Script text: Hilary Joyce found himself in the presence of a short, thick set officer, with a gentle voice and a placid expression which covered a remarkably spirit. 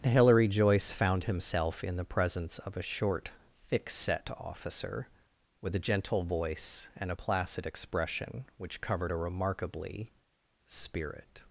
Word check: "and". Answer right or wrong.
right